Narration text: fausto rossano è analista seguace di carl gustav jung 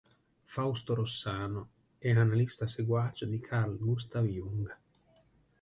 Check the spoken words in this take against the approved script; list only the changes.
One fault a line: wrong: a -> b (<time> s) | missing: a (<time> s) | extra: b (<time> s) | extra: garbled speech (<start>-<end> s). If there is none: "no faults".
no faults